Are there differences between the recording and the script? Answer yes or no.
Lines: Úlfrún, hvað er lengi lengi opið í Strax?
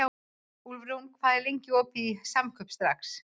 yes